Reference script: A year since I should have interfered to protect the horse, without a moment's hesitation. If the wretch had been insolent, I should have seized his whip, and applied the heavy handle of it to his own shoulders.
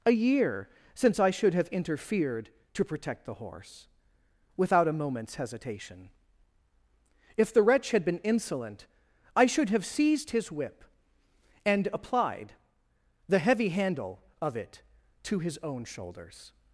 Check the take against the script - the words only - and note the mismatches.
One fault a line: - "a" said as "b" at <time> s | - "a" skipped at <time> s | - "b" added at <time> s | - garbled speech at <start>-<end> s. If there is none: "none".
none